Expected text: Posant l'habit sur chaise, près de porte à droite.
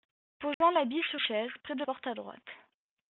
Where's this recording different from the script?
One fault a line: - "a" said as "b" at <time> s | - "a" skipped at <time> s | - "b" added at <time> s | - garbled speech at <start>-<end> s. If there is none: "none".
none